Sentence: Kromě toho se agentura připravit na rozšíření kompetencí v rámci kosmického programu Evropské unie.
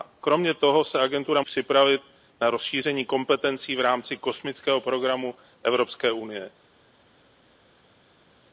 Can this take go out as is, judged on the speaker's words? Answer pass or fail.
pass